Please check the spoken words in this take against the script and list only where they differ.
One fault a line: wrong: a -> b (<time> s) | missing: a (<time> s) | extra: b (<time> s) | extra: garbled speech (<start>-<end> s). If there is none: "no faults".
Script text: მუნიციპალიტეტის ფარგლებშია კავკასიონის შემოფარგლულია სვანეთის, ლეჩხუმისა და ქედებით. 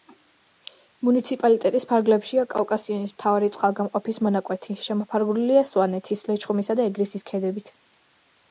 extra: მთავარი წყალგამყოფის მონაკვეთი (3.2 s)
extra: ეგრისის (6.9 s)